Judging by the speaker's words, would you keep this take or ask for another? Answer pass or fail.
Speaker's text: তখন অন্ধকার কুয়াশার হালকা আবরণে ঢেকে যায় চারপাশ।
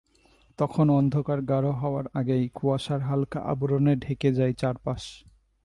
fail